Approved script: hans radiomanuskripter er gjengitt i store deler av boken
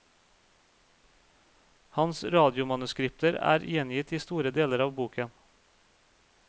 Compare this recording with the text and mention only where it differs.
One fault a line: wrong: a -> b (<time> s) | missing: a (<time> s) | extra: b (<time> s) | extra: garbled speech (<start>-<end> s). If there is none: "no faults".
no faults